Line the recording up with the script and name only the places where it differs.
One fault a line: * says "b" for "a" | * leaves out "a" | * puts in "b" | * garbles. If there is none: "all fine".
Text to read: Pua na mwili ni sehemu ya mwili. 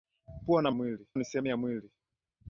all fine